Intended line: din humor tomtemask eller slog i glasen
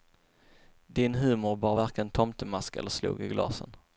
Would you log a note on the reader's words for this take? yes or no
yes